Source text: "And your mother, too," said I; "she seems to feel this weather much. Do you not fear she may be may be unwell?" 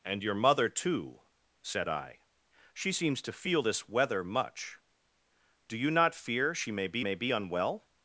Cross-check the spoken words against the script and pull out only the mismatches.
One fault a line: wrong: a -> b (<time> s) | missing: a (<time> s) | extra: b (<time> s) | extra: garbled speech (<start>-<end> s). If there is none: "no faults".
no faults